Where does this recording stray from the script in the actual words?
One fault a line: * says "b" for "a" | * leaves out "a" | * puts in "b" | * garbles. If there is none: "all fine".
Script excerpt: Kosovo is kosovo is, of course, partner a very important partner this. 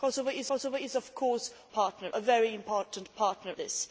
all fine